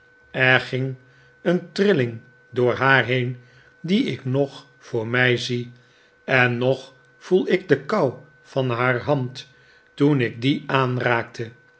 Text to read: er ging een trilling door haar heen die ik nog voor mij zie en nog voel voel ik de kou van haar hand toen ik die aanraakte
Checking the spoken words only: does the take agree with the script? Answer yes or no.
no